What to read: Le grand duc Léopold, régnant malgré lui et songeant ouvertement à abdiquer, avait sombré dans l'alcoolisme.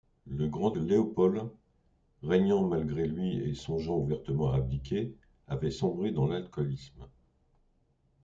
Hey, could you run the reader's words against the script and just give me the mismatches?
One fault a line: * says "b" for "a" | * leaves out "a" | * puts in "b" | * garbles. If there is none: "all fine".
* leaves out "duc"